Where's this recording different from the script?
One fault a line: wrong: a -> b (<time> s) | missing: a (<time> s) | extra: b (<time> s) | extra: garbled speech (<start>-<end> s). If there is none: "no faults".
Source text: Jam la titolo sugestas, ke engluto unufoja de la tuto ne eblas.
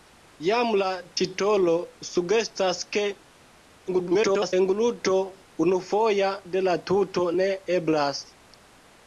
extra: garbled speech (3.9-4.5 s)